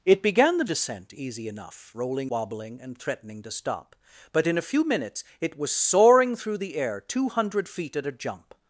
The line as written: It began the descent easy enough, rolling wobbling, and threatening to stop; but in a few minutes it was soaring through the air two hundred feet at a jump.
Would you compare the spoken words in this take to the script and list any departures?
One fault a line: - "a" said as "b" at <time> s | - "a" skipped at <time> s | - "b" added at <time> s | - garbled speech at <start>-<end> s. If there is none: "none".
none